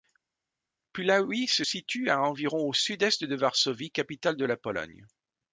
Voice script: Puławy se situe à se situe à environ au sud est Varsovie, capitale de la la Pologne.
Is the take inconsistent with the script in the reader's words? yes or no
yes